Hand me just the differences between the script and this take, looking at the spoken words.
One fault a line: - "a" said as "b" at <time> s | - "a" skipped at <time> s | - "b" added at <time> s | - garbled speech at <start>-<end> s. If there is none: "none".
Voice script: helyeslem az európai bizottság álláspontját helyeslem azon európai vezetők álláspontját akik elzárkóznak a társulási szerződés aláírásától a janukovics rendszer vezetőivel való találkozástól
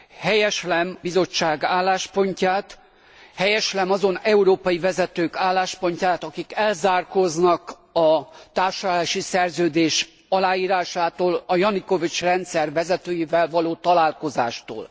- "az európai" skipped at 1.0 s